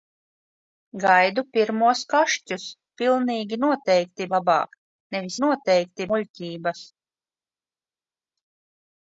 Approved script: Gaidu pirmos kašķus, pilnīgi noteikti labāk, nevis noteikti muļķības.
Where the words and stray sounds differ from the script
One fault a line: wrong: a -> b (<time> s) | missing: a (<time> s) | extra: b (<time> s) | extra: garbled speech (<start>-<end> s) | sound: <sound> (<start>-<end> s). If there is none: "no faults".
no faults